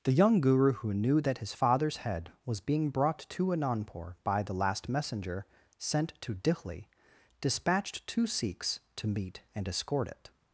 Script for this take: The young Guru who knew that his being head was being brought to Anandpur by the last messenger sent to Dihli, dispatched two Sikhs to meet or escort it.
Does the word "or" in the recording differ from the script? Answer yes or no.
yes